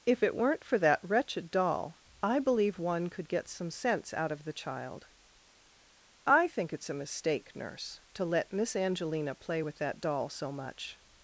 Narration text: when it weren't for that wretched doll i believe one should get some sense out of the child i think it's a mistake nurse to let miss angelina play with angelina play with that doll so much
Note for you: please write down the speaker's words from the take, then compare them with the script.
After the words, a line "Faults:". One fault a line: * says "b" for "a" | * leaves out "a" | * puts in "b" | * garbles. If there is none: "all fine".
if it weren't for that wretched doll i believe one could get some sense out of the child i think it's a mistake nurse to let miss angelina play with that doll so much
Faults:
* says "if" for "when"
* says "could" for "should"
* leaves out "angelina play with"